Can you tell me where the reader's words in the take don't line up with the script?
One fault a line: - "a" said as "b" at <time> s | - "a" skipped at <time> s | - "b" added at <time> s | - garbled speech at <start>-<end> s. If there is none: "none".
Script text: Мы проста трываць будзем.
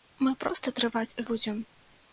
none